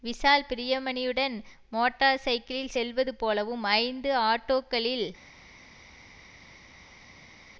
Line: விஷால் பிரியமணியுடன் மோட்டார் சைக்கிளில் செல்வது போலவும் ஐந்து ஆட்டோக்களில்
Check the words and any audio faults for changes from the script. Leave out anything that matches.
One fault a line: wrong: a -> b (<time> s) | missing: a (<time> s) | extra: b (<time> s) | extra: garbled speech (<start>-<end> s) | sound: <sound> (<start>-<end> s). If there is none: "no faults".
no faults